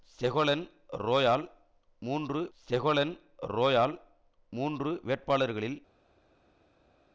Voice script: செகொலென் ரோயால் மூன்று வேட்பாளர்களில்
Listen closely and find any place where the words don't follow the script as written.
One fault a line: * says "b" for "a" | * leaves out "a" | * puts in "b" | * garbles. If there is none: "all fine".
* puts in "செகொலென் ரோயால் மூன்று"